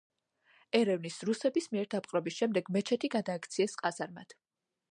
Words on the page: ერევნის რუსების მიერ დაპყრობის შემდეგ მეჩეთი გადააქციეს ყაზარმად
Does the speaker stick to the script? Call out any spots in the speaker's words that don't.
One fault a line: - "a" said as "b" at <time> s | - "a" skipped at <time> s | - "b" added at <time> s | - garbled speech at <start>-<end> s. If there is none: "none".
none